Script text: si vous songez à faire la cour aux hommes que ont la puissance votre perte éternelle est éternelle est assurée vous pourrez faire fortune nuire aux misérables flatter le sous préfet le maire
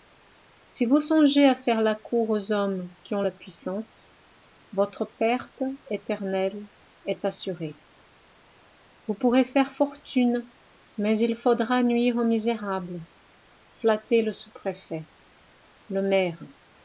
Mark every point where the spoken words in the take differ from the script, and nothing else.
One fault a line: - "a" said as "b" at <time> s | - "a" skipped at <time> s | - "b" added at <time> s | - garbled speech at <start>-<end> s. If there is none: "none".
- "que" said as "qui" at 3.0 s
- "éternelle est" skipped at 7.2 s
- "mais il faudra" added at 11.0 s